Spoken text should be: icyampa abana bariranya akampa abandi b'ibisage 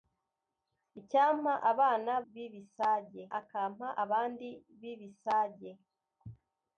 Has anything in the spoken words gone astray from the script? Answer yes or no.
yes